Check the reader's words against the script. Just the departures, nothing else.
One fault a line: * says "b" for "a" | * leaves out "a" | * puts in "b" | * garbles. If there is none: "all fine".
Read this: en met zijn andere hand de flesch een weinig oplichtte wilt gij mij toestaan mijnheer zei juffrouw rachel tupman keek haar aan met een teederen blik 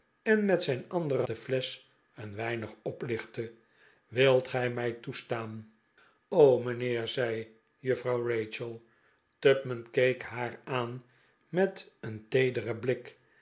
* leaves out "hand"